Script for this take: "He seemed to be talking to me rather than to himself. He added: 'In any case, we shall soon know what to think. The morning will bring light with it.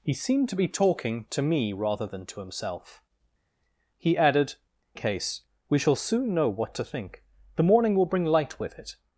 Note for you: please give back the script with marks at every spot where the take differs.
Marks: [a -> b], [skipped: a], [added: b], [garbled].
"He seemed to be talking to me rather than to himself. He added: [skipped: 'In any] case, we shall soon know what to think. The morning will bring light with it.